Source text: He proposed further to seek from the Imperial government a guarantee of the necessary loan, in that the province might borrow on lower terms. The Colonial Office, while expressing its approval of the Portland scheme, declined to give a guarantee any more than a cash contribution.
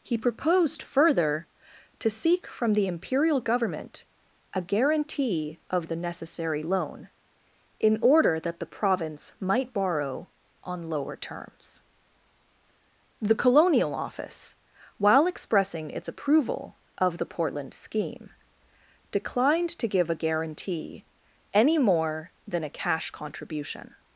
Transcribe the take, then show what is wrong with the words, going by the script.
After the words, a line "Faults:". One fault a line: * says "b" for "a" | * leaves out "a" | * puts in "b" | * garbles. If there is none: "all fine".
He proposed further to seek from the Imperial government a guarantee of the necessary loan, in order that the province might borrow on lower terms. The Colonial Office, while expressing its approval of the Portland scheme, declined to give a guarantee any more than a cash contribution.
Faults:
* puts in "order"